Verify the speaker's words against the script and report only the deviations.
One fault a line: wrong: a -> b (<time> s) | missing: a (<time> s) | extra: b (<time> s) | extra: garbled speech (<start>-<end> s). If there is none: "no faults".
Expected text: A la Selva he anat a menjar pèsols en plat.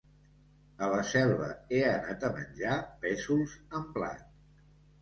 no faults